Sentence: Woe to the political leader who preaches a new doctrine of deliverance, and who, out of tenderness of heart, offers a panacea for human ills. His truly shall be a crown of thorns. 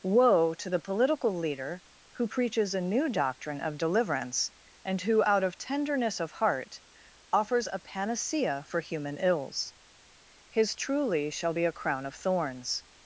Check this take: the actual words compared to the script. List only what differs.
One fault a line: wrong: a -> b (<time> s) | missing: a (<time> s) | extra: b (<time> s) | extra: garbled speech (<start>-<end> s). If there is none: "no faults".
no faults